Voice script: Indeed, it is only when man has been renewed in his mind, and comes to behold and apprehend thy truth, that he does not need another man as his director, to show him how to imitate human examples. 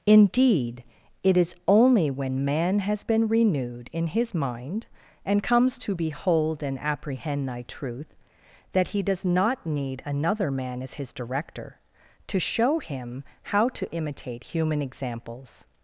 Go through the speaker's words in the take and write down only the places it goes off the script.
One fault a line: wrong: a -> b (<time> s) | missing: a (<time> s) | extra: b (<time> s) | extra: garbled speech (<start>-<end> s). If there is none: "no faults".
no faults